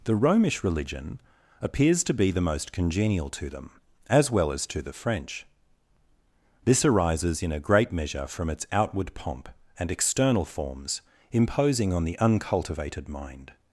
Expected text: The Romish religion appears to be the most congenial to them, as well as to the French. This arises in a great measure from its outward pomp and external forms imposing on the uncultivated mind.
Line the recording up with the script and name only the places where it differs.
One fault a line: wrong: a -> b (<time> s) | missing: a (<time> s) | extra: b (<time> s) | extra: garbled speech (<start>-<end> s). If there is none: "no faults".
no faults